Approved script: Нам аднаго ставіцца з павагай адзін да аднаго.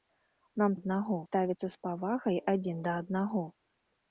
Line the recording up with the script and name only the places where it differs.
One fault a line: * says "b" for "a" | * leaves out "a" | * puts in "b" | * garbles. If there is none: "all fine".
all fine